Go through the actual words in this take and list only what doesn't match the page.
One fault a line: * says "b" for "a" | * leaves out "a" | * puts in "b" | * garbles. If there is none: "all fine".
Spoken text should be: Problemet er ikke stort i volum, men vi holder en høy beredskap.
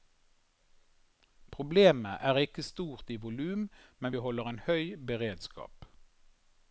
all fine